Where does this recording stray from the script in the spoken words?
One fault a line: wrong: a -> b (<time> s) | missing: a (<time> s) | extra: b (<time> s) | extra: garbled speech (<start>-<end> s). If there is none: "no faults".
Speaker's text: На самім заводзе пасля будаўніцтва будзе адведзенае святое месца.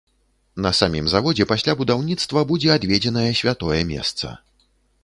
no faults